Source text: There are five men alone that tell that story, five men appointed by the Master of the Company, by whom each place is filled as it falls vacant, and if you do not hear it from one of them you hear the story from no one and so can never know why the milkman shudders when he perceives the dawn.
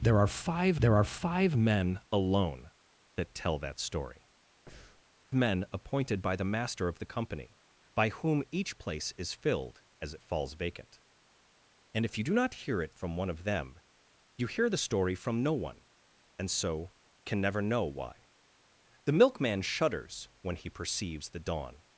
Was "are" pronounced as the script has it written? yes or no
yes